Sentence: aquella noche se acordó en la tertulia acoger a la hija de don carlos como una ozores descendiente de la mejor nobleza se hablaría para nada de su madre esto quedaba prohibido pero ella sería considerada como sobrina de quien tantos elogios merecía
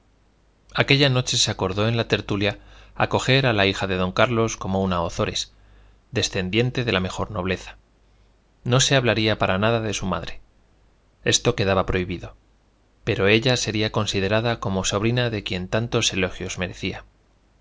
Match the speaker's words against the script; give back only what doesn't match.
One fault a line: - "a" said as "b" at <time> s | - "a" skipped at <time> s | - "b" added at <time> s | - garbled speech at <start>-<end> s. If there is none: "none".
- "no" added at 8.6 s